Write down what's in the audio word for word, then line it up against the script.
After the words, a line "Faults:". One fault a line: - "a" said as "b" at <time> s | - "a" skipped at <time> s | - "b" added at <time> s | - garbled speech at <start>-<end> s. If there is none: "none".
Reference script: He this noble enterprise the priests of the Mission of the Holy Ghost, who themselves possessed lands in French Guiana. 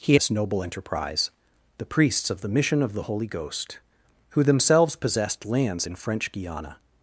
He this noble enterprise the priests of the Mission of the Holy Ghost, who themselves possessed lands in French Guiana.
Faults:
none